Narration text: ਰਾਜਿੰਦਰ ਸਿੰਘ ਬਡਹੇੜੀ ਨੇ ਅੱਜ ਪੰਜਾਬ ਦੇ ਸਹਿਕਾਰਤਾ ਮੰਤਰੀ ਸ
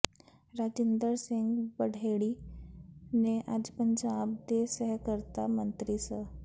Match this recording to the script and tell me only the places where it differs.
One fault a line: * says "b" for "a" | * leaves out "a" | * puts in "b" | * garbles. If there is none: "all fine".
all fine